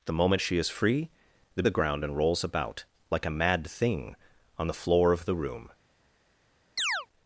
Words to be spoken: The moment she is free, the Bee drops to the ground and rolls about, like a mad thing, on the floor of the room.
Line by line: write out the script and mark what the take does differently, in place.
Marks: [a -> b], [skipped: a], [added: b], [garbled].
The moment she is free, the [skipped: Bee drops to] the ground and rolls about, like a mad thing, on the floor of the room.